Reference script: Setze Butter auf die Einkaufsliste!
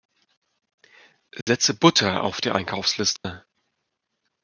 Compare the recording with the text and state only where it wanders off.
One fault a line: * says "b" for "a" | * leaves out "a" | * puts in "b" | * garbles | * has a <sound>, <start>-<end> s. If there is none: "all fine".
* has a dropout, 1.4-1.5 s
* has a dropout, 3.2-3.2 s